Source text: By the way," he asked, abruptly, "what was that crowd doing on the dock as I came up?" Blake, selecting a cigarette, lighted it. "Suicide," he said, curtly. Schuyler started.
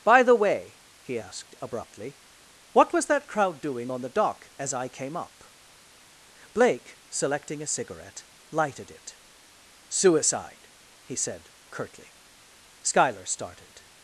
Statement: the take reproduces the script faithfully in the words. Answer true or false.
true